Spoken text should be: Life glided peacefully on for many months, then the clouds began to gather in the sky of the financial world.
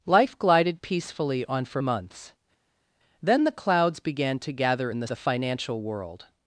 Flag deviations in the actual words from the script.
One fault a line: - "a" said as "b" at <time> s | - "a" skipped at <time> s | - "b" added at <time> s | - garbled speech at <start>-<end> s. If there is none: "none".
- "many" skipped at 1.8 s
- "sky of" skipped at 5.1 s